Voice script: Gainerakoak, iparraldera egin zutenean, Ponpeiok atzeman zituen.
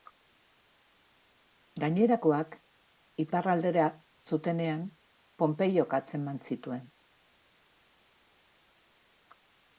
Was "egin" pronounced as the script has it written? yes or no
no